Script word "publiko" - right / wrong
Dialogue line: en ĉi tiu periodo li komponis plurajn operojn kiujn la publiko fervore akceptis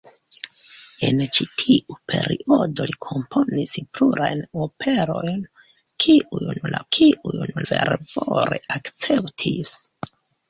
wrong